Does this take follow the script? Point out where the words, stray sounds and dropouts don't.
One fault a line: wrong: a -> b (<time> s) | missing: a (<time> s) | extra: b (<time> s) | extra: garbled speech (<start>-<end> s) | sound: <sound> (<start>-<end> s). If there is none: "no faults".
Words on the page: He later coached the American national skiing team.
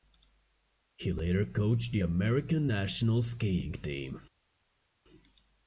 no faults